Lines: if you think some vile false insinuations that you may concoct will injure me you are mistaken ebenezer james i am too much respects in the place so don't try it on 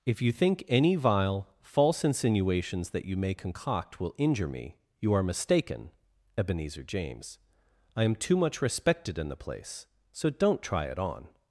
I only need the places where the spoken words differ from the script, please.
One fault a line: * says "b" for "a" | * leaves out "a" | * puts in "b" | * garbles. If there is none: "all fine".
* says "any" for "some"
* says "respected" for "respects"